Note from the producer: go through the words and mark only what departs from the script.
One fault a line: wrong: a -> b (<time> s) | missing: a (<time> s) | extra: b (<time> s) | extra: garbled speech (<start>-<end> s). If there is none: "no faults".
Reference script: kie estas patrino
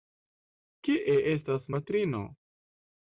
no faults